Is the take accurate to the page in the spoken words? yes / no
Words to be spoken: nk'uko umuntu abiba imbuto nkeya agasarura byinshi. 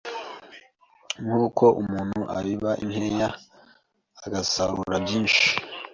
no